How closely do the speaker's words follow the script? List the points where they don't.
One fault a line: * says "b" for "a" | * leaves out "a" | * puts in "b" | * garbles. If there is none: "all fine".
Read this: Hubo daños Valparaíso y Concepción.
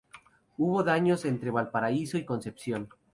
* puts in "entre"